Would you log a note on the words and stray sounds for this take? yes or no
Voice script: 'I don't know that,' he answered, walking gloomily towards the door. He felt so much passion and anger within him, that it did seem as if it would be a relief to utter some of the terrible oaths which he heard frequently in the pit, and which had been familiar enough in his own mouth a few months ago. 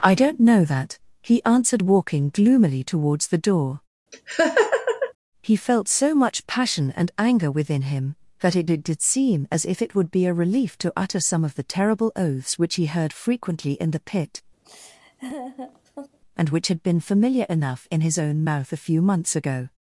yes